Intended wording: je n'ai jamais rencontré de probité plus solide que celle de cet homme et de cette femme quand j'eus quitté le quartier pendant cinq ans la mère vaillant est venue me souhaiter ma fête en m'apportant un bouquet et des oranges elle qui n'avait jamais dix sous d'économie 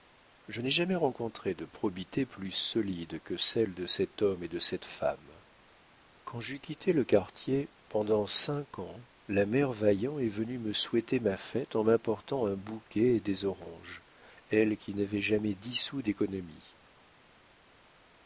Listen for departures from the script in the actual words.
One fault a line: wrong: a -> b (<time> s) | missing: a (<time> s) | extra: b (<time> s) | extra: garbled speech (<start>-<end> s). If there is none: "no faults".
no faults